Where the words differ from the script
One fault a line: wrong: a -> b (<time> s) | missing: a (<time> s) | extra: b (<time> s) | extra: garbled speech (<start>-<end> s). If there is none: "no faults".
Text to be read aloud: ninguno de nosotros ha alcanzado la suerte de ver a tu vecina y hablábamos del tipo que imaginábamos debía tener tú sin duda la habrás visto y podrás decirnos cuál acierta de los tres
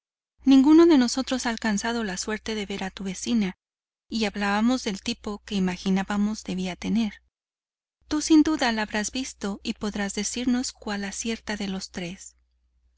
no faults